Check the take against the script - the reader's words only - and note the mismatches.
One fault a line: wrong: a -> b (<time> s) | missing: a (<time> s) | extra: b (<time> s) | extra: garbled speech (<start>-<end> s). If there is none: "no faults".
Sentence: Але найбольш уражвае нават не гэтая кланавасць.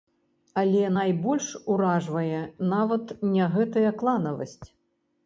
no faults